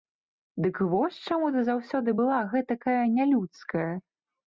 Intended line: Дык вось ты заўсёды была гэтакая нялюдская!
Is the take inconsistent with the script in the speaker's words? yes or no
yes